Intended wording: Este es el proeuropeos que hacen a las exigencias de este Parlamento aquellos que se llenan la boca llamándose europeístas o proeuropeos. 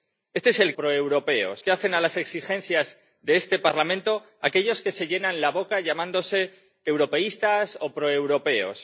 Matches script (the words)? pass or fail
pass